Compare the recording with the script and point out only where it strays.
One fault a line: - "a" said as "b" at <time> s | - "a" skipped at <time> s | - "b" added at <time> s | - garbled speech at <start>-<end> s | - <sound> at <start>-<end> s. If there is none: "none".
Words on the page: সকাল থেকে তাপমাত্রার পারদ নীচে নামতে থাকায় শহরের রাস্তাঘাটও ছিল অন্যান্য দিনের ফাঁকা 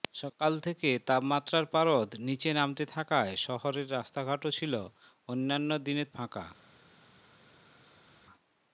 none